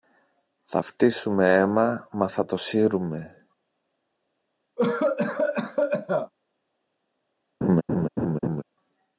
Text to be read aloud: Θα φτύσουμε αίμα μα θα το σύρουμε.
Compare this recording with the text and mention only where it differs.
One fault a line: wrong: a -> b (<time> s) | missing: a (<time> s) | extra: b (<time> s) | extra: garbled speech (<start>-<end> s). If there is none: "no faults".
no faults